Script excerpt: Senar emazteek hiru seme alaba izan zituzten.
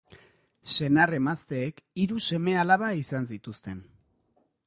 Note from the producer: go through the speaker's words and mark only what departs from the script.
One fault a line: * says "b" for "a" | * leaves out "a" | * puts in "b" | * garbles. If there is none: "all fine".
all fine